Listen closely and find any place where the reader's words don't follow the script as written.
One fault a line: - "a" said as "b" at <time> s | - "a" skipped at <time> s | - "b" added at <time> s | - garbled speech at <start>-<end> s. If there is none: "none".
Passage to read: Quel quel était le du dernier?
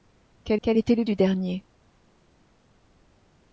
none